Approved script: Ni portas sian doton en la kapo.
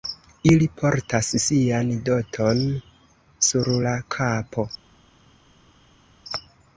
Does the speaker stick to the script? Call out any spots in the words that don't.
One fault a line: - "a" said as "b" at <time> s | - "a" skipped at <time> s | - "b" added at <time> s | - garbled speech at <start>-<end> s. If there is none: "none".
- "Ni" said as "Ili" at 0.5 s
- "en" said as "sur" at 3.5 s